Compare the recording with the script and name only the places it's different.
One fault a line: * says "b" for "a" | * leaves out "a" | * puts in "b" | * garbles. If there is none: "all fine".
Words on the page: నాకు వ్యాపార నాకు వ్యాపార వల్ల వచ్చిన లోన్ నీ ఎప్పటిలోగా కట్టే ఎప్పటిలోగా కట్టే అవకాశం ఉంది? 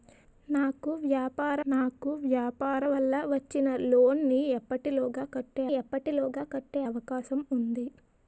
all fine